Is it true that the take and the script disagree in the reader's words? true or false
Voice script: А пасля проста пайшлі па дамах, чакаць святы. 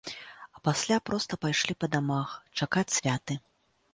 false